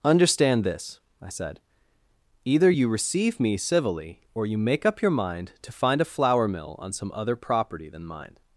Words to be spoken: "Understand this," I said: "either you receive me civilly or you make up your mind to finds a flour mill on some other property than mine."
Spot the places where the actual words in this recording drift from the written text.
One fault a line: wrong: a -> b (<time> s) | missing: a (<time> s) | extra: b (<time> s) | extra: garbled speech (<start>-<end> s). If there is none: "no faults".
wrong: finds -> find (5.7 s)